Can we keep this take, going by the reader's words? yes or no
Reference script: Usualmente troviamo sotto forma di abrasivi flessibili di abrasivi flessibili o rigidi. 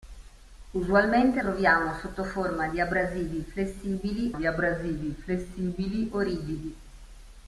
yes